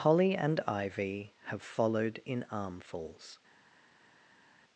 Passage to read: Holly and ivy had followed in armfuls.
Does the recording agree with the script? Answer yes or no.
no